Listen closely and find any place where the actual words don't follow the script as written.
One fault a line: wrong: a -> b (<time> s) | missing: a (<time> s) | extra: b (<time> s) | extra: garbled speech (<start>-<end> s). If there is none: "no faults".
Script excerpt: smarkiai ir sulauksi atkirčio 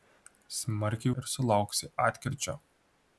no faults